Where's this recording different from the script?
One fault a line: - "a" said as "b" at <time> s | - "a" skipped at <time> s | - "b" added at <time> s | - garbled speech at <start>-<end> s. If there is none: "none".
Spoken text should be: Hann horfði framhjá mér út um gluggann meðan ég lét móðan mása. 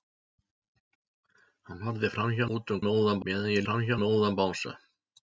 - "mér" skipped at 2.5 s
- "gluggann" said as "móðan" at 2.9 s
- "lét" said as "framhjá" at 3.7 s